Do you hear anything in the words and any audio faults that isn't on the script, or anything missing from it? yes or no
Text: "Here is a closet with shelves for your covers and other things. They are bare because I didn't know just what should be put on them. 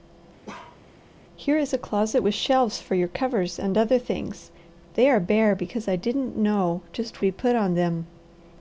yes